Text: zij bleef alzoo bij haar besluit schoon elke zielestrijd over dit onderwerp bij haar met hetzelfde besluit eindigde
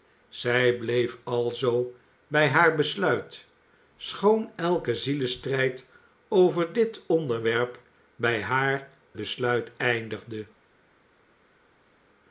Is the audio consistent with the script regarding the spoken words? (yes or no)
no